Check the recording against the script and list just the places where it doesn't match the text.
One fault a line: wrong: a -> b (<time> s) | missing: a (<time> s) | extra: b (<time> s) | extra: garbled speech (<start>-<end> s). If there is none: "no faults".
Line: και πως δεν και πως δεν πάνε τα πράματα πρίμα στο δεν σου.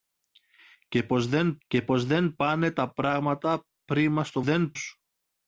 no faults